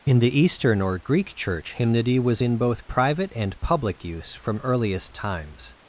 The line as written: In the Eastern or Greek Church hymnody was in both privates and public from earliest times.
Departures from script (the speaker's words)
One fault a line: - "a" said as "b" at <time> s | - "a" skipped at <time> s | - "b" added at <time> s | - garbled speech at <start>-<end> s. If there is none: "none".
- "privates" said as "private" at 2.9 s
- "use" added at 4.0 s